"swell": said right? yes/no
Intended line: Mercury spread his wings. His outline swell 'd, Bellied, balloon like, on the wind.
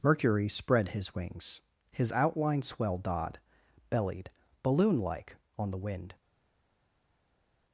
no